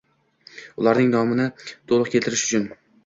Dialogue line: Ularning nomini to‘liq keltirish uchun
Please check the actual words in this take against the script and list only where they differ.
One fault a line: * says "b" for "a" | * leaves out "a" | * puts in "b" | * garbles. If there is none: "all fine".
all fine